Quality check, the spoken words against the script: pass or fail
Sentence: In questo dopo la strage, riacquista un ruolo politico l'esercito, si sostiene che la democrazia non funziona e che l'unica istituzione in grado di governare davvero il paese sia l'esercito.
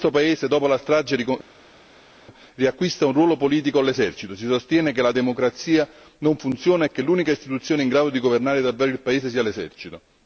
fail